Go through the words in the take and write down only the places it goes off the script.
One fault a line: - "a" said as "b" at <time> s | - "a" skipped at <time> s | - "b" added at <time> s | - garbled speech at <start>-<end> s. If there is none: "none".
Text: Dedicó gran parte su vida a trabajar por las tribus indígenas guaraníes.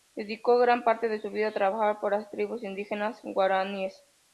- "de" added at 1.1 s